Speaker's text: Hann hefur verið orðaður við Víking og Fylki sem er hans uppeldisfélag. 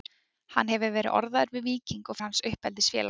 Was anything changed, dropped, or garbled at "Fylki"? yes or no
yes